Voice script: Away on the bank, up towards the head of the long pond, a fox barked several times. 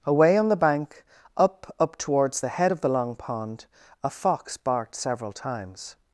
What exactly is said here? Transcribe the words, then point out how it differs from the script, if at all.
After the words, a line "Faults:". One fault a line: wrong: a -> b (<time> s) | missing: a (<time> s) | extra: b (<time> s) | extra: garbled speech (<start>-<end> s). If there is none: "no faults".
Away on the bank, up up towards the head of the long pond, a fox barked several times.
Faults:
extra: up (1.8 s)